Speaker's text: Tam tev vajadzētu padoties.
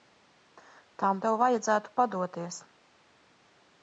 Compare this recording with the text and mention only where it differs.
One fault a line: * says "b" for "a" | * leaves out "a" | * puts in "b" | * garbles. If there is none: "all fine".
all fine